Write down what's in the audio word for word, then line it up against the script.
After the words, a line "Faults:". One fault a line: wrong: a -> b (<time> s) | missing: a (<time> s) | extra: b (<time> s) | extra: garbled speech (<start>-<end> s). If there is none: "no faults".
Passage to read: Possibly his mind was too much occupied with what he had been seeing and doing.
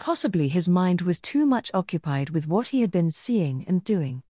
Possibly his mind was too much occupied with what he had been seeing and doing.
Faults:
no faults